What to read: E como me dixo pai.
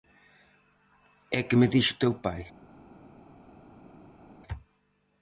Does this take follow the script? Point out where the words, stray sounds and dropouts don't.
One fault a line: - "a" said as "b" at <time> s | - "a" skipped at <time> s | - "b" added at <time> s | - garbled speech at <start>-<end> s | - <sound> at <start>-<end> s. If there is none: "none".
- "como" said as "que" at 1.4 s
- "teu" added at 2.0 s